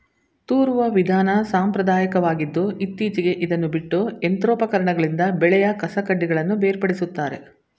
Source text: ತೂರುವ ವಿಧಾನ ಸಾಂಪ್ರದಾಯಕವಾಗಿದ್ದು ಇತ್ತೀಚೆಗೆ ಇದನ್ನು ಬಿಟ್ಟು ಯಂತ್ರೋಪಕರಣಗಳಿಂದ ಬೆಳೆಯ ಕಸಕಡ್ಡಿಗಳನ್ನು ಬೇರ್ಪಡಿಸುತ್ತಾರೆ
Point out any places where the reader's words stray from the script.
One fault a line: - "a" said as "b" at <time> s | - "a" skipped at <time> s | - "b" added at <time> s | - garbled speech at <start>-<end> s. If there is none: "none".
none